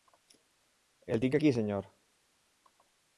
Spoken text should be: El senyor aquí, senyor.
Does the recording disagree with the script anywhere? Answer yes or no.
yes